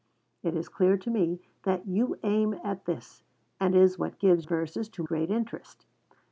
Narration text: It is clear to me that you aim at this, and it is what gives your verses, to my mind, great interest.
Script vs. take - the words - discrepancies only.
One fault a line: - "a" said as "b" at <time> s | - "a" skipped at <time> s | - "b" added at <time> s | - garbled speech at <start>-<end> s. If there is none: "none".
- "it" skipped at 3.7 s
- "your" skipped at 4.5 s
- "my mind" skipped at 5.0 s